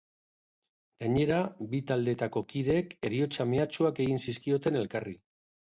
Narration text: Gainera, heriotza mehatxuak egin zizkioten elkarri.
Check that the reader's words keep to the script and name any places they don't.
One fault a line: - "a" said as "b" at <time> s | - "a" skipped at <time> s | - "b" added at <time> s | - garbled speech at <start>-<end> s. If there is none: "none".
- "bi taldeetako kideek" added at 1.7 s